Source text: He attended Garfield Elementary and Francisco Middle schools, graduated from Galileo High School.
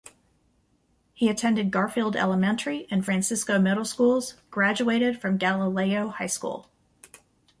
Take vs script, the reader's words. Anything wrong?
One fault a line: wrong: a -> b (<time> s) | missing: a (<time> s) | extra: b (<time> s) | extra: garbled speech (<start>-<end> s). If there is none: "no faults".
no faults